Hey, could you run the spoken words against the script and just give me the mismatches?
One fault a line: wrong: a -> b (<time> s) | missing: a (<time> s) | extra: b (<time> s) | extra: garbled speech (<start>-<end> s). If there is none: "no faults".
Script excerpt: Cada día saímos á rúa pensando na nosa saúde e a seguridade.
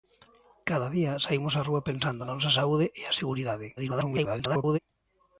extra: garbled speech (3.8-4.8 s)